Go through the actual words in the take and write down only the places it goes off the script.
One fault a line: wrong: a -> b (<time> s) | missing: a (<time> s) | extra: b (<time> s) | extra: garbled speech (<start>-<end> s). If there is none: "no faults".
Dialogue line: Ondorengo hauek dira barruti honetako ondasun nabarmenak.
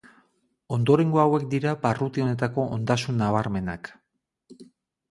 no faults